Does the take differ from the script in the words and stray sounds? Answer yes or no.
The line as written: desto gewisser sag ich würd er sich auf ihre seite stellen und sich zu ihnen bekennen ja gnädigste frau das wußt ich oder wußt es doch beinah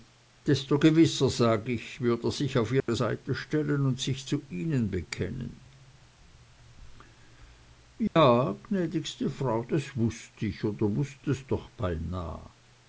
yes